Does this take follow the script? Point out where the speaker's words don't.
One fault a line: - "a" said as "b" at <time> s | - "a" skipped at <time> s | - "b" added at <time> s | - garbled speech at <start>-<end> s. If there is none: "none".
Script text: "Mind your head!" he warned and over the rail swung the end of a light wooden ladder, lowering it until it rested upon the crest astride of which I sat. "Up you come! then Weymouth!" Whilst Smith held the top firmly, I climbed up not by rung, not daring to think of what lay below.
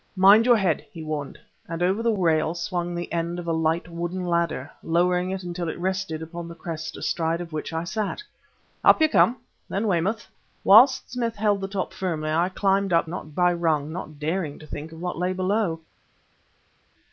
none